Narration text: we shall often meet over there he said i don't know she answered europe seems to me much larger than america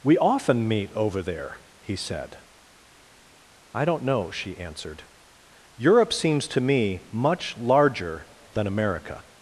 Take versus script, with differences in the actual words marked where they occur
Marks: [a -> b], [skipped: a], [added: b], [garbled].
we [skipped: shall] often meet over there he said i don't know she answered europe seems to me much larger than america